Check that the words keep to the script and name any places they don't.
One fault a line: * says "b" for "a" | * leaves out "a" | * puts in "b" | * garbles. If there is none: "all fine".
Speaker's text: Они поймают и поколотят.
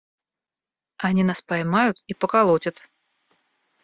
* puts in "нас"